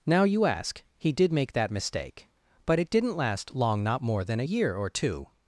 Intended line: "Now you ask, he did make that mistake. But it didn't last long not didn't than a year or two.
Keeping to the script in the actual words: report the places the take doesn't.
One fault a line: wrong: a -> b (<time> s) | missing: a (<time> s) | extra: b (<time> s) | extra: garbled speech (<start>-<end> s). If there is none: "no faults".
wrong: didn't -> more (4.0 s)